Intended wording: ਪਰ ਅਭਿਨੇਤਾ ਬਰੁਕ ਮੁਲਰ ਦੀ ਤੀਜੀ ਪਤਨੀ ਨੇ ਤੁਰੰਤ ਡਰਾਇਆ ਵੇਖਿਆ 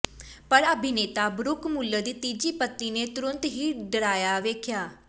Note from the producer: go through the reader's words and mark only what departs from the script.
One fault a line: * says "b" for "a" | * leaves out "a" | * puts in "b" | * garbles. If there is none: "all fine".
* puts in "ਹੀ"